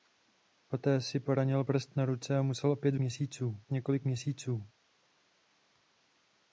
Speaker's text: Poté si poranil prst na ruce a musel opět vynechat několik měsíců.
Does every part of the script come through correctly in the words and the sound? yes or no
no